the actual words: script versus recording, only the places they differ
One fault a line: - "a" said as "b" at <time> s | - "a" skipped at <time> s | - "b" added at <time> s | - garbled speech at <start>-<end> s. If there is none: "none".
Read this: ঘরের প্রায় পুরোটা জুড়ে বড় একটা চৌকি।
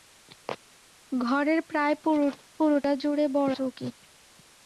- "একটা" skipped at 3.5 s